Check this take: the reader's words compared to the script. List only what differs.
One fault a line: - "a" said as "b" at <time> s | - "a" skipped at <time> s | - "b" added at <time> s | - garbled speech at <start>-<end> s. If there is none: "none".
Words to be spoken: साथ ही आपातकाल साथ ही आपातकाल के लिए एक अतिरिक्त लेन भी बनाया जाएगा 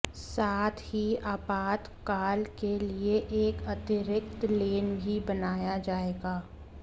- "साथ ही आपातकाल" skipped at 2.4 s